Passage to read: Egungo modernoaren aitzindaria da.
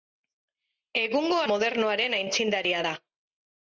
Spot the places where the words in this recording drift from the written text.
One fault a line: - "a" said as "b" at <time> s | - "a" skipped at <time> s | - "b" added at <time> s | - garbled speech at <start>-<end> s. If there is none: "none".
none